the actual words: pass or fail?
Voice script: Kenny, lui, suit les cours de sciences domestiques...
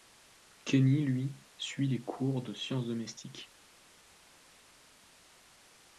pass